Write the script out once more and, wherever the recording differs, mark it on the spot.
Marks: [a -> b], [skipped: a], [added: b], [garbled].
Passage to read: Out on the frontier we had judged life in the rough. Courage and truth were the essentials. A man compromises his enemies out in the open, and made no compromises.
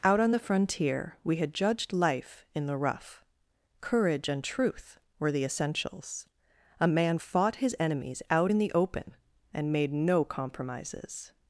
Out on the frontier we had judged life in the rough. Courage and truth were the essentials. A man [compromises -> fought] his enemies out in the open, and made no compromises.